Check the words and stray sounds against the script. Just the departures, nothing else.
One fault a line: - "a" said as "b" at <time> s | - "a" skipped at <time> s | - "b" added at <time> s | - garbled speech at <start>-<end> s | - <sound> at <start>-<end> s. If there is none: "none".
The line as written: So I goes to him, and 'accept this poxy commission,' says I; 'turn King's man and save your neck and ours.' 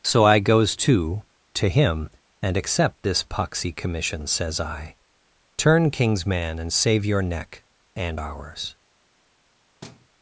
- "to" added at 1.5 s
- thud at 9.8-10.1 s